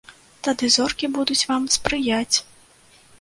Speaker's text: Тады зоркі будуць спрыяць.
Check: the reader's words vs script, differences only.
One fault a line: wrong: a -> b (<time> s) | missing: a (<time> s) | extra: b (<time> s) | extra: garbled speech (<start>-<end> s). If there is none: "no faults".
extra: вам (1.5 s)